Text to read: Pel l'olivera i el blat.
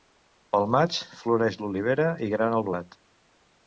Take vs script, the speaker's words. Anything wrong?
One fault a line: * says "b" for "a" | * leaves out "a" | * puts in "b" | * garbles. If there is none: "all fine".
* puts in "maig floreix"
* puts in "grana"